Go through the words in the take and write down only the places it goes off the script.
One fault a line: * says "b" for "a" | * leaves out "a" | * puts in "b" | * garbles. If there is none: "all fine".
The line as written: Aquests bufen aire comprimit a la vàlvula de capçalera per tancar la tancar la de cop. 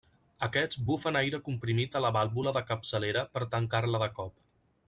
* leaves out "tancar la"